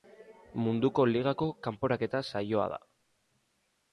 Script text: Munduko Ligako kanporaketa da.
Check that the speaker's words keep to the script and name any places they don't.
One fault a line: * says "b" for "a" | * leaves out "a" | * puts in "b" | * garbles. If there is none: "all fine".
* puts in "saioa"